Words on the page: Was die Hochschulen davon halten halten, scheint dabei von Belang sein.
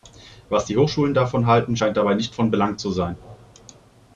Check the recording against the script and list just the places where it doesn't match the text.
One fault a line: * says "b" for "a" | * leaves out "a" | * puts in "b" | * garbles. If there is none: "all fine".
* leaves out "halten"
* puts in "nicht"
* puts in "zu"